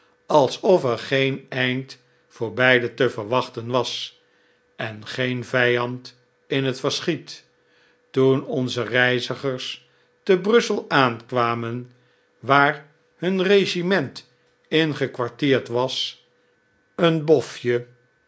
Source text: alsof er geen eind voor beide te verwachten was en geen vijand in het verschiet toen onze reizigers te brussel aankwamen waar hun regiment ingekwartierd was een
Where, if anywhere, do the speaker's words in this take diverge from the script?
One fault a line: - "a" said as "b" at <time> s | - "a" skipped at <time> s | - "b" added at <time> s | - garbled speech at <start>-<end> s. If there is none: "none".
none